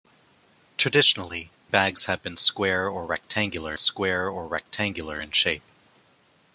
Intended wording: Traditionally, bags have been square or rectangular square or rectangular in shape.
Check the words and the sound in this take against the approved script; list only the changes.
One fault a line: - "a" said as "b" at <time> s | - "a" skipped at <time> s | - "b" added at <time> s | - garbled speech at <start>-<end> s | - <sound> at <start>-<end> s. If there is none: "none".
none